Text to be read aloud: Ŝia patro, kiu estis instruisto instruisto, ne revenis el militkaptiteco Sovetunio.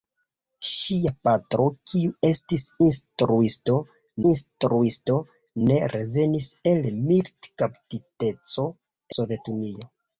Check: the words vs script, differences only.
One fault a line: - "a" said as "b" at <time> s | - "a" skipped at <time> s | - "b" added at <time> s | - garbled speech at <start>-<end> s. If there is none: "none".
none